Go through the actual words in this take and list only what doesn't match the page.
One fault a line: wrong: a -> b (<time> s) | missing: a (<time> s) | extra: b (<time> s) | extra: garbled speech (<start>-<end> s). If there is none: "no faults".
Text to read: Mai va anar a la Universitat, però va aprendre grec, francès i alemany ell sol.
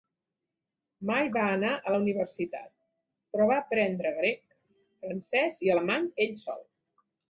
no faults